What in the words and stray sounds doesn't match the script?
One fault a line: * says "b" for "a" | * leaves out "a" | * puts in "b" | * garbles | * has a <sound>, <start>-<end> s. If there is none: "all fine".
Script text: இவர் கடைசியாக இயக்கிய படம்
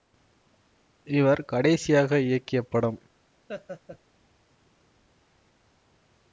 * has a laugh, 3.5-4.0 s